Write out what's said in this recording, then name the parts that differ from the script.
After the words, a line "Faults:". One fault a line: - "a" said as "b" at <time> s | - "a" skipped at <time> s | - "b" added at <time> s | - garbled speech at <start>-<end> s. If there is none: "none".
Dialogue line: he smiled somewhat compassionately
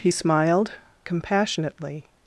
he smiled compassionately
Faults:
- "somewhat" skipped at 0.7 s